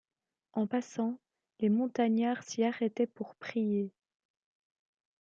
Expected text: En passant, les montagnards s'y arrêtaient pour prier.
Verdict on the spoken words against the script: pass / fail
pass